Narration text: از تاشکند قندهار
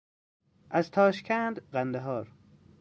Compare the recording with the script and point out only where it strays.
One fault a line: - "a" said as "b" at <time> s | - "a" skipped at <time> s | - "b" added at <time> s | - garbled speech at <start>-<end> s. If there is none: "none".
none